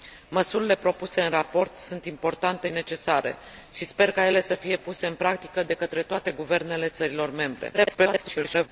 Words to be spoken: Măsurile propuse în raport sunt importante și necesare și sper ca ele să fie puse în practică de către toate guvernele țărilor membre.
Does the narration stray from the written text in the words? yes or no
yes